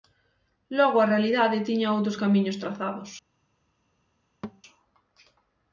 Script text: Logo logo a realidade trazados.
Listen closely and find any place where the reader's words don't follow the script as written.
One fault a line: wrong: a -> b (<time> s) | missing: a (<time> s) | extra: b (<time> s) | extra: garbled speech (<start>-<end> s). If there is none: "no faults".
missing: logo (1.0 s)
extra: tiña outros camiños (1.7 s)